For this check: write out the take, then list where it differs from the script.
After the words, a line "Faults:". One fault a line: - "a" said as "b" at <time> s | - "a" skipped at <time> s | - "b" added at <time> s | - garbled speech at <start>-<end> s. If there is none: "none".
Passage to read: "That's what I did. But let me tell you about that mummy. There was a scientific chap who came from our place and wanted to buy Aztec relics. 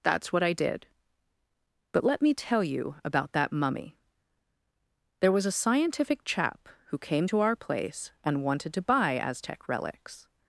"That's what I did. But let me tell you about that mummy. There was a scientific chap who came to our place and wanted to buy Aztec relics.
Faults:
- "from" said as "to" at 7.3 s